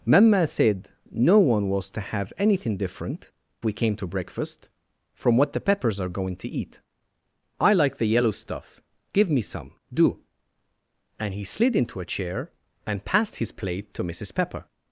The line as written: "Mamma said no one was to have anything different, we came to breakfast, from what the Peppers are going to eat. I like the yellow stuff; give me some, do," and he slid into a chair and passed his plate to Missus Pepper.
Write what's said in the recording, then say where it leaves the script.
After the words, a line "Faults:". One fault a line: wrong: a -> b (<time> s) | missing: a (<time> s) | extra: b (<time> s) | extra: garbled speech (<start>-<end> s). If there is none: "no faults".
"Mamma said no one was to have anything different, we came to breakfast, from what the Peppers are going to eat. I like the yellow stuff; give me some, do," and he slid into a chair and passed his plate to Missus Pepper.
Faults:
no faults